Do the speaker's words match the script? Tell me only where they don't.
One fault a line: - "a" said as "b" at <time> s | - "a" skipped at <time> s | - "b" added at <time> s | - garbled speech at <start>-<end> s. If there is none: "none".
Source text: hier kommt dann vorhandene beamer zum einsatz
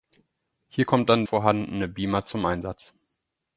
none